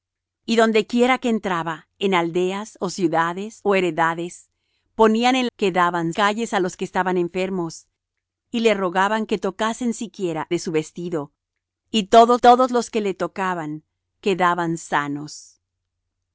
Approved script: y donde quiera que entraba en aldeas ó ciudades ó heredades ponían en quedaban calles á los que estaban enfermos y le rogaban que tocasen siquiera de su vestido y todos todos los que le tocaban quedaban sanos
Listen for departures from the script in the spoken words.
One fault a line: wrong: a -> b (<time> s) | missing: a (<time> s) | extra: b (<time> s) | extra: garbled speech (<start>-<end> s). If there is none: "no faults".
no faults